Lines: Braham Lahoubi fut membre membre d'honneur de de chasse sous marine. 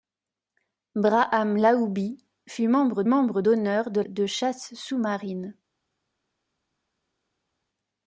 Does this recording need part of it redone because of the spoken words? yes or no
no